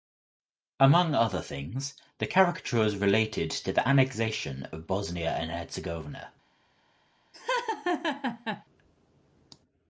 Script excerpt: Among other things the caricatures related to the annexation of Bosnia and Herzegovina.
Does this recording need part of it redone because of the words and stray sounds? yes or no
yes